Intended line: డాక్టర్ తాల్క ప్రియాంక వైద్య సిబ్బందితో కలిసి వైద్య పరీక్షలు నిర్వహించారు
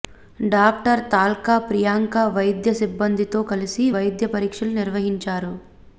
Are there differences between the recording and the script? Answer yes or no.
no